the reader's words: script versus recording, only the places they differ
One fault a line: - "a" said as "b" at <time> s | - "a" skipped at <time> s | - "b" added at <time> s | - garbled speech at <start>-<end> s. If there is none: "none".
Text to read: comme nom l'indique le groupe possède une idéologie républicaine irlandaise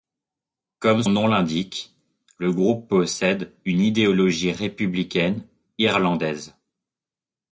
none